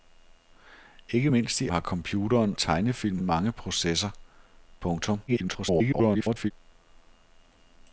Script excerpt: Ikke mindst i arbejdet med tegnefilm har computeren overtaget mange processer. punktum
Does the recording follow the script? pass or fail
fail